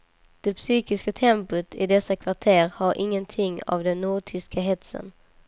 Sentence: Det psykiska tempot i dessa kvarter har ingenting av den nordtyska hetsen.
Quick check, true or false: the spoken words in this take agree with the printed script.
true